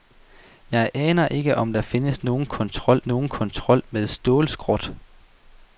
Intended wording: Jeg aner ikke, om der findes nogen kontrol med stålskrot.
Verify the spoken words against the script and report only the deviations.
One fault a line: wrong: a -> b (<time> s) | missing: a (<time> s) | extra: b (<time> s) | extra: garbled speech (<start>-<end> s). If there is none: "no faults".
extra: nogen kontrol (3.1 s)